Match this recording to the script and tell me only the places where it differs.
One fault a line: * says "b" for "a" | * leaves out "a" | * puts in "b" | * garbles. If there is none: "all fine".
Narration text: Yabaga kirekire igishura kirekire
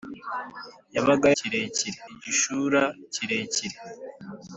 all fine